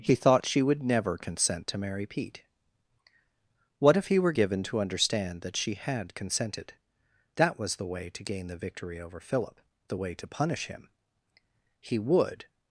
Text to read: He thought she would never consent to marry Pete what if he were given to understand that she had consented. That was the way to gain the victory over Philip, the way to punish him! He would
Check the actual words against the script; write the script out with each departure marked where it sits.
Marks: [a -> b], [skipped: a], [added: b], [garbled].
He thought she would never consent to marry Pete what if he were given to understand that she had consented. That was the way to gain the victory over Philip, the way to punish him! He would